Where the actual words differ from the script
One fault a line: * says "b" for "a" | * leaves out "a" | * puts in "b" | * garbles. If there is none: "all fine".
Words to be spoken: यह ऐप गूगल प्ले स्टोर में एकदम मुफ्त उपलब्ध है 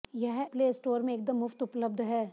* leaves out "ऐप गूगल"